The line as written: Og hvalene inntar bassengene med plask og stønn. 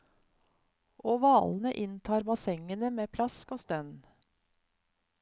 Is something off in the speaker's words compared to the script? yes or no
no